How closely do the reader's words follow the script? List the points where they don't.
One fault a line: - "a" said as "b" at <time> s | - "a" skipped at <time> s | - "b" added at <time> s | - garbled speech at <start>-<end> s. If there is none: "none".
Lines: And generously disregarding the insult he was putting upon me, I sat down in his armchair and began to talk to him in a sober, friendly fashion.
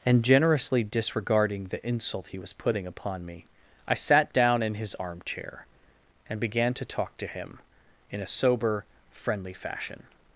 none